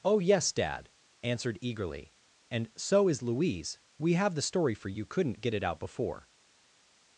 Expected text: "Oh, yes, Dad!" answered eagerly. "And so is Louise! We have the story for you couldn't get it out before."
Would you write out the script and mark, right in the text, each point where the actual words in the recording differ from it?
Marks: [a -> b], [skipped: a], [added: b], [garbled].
"Oh, yes, Dad!" answered eagerly. "And so is Louise! We have the story for you couldn't get it out before."